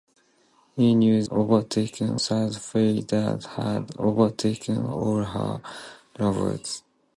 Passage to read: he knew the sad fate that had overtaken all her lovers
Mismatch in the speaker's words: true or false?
true